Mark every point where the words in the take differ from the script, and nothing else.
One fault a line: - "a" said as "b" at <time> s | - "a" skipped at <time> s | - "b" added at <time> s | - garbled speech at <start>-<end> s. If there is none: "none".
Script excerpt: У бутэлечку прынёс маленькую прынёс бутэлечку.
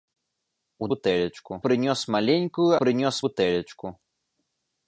none